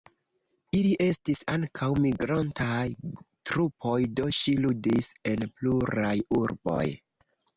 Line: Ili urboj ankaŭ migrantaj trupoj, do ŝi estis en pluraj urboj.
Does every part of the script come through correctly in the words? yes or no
no